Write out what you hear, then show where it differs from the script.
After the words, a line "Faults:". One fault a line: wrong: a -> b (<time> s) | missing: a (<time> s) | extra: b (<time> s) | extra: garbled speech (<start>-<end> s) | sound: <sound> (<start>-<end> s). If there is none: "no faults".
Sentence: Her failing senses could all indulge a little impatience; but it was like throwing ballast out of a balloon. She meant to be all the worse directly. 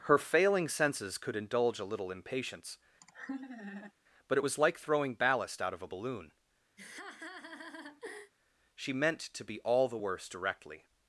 Her failing senses could indulge a little impatience; but it was like throwing ballast out of a balloon. She meant to be all the worse directly.
Faults:
missing: all (1.4 s)
sound: laugh (3.0-3.9 s)
sound: laugh (6.8-8.3 s)